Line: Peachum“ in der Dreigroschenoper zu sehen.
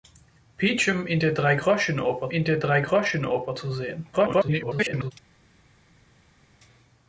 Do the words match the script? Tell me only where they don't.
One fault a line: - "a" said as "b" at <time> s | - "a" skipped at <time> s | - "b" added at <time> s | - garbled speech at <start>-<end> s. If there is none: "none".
- "in der Dreigroschenoper" added at 2.3 s
- garbled speech at 4.1-5.1 s